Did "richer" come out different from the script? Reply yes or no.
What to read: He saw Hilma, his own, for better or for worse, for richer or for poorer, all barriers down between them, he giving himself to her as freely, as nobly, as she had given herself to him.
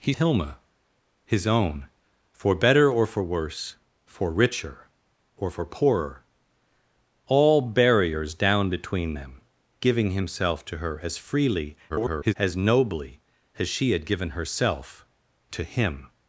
no